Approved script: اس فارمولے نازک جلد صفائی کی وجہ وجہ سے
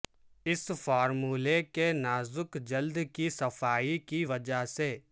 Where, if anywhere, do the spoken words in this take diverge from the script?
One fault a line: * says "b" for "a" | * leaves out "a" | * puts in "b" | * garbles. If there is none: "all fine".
* puts in "کے"
* puts in "کی"
* leaves out "وجہ"